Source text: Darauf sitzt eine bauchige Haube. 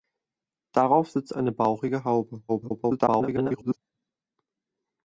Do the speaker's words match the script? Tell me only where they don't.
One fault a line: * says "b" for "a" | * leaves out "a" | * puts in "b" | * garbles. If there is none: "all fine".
* garbles